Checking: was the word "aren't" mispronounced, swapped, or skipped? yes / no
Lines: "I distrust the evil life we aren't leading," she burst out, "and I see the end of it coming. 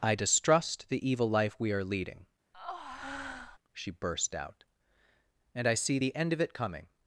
yes